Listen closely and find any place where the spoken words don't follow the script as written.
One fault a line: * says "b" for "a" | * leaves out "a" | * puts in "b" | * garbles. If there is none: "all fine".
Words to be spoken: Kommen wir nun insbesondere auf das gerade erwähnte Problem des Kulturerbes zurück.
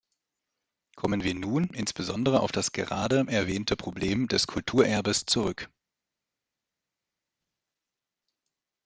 all fine